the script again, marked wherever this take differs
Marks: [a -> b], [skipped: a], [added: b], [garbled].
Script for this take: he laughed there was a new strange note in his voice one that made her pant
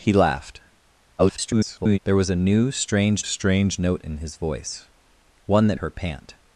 he laughed [garbled] there was a new strange [added: strange] note in his voice one that [skipped: made] her pant